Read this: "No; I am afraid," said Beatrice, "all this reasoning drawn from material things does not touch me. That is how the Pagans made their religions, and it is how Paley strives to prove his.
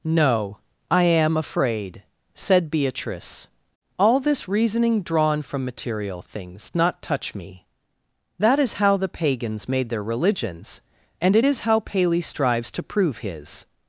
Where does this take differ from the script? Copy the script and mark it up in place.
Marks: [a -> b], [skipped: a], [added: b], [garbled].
"No; I am afraid," said Beatrice, "all this reasoning drawn from material things [skipped: does] not touch me. That is how the Pagans made their religions, and it is how Paley strives to prove his.